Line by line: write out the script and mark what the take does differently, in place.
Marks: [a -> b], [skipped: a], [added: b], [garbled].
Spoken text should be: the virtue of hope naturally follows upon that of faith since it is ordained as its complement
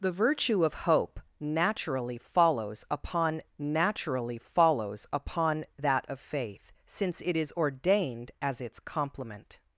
the virtue of hope naturally follows upon [added: naturally follows upon] that of faith since it is ordained as its complement